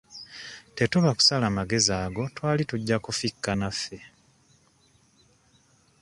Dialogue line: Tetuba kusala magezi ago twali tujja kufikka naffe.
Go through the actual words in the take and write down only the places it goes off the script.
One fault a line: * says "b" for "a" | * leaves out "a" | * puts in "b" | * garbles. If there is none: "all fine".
all fine